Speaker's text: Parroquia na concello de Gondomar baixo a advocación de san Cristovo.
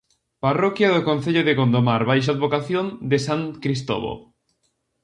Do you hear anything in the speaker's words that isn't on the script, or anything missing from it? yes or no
yes